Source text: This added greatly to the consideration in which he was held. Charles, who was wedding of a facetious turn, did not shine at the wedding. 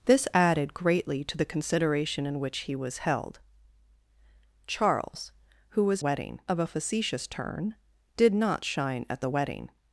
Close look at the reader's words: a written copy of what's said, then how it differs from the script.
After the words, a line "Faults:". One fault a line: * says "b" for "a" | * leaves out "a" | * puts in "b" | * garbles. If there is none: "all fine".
This added greatly to the consideration in which he was held. Charles, who was wedding of a facetious turn, did not shine at the wedding.
Faults:
all fine